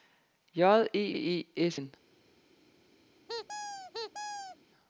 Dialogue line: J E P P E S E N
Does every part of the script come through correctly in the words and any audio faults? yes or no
no